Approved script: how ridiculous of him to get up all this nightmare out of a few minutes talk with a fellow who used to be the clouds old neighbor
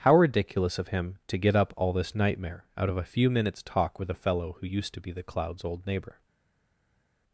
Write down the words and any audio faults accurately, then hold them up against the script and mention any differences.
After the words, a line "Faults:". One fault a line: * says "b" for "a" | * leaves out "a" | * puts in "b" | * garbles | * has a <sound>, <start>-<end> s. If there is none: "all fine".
how ridiculous of him to get up all this nightmare out of a few minutes talk with a fellow who used to be the clouds old neighbor
Faults:
all fine